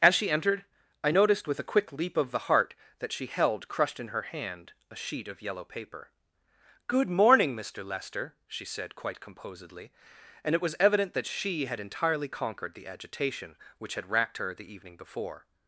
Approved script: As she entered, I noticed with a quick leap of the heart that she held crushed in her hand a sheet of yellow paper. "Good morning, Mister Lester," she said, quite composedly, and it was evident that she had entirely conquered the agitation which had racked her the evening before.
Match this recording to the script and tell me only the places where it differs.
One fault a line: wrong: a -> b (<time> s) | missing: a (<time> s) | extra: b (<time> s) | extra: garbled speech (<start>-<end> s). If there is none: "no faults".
no faults